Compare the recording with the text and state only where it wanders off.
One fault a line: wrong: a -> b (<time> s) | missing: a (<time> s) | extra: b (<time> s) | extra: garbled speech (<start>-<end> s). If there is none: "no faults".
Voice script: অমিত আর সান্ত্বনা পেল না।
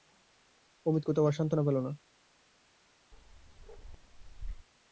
extra: কোথাও (1.1 s)